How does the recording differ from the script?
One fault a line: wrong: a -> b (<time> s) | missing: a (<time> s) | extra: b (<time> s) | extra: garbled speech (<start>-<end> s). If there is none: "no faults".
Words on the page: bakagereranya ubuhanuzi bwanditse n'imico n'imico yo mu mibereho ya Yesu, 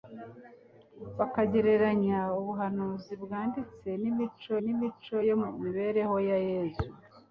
no faults